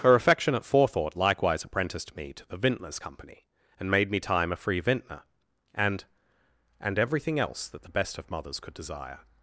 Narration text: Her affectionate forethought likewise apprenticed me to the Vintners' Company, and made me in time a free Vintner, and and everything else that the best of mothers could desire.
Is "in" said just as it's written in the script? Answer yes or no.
no